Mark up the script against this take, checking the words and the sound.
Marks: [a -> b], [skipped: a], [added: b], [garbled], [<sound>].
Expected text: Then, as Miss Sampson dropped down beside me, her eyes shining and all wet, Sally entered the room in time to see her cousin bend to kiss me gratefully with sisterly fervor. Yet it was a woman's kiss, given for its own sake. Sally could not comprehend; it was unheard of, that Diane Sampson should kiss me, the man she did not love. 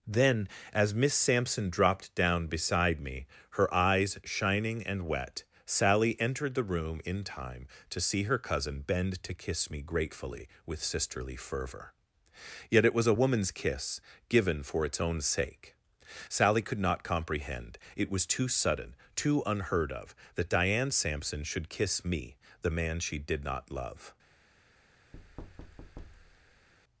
Then, as Miss Sampson dropped down beside me, her eyes shining and [skipped: all] wet, Sally entered the room in time to see her cousin bend to kiss me gratefully with sisterly fervor. Yet it was a woman's kiss, given for its own sake. Sally could not comprehend; it was [added: too sudden too] unheard of, that Diane Sampson should kiss me, the man she did not love. [thud]